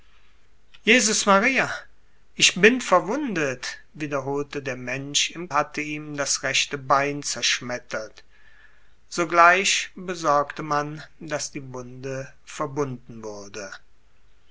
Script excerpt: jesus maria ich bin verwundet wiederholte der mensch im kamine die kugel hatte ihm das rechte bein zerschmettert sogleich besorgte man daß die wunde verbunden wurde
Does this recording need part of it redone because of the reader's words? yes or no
yes